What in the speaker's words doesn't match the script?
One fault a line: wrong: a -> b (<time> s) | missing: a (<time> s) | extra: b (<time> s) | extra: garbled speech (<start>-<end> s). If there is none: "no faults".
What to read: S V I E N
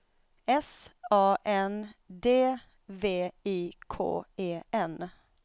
extra: A N D (1.1 s)
extra: K (3.9 s)